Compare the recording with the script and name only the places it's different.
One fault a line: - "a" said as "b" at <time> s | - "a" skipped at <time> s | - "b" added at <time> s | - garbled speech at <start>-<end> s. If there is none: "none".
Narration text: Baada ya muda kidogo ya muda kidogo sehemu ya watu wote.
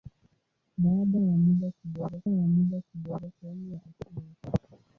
none